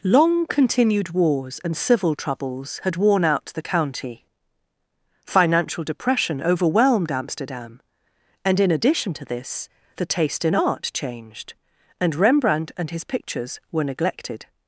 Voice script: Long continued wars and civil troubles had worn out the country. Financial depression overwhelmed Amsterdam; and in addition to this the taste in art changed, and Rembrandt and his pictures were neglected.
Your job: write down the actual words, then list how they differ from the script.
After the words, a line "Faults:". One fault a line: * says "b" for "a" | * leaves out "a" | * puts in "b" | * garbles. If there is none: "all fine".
Long continued wars and civil troubles had worn out the county. Financial depression overwhelmed Amsterdam; and in addition to this the taste in art changed, and Rembrandt and his pictures were neglected.
Faults:
* says "county" for "country"